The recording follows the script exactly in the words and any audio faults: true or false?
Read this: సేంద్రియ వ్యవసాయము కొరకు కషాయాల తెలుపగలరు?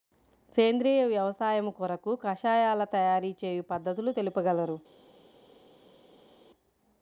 false